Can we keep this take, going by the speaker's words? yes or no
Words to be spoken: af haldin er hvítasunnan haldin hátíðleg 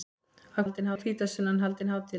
yes